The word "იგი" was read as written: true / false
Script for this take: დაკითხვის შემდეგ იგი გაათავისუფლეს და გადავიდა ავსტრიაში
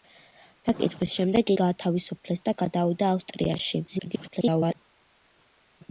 false